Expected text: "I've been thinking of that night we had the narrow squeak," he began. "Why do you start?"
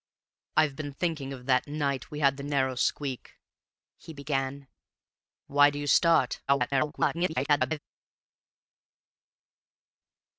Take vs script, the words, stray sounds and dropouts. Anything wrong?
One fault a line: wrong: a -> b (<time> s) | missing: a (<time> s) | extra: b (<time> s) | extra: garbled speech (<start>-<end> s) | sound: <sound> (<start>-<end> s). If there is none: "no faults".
extra: garbled speech (6.5-7.8 s)